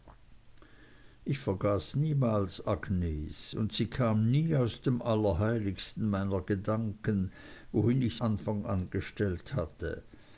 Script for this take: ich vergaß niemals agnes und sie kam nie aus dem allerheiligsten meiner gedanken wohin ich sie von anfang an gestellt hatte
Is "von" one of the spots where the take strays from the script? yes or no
yes